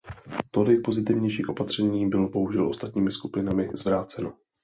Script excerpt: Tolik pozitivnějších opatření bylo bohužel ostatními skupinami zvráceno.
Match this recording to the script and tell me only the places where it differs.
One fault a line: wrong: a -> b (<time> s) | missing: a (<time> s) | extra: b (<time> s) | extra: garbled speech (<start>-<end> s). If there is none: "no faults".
no faults